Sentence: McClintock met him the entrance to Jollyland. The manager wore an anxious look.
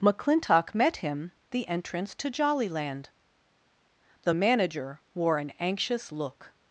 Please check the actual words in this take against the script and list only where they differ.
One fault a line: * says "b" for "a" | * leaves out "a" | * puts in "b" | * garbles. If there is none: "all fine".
all fine